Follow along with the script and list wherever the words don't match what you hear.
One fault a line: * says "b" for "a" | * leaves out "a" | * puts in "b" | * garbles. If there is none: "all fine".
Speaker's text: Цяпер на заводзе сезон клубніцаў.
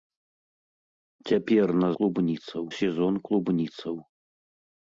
* says "клубніцаў" for "заводзе"